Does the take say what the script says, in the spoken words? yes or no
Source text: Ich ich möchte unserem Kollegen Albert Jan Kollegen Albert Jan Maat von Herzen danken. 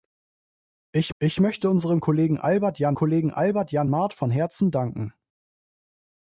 yes